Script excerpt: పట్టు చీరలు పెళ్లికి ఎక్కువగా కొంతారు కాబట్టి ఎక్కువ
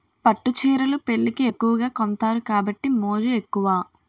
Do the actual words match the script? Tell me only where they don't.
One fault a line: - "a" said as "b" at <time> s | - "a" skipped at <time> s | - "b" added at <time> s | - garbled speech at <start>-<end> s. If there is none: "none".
- "మోజు" added at 3.0 s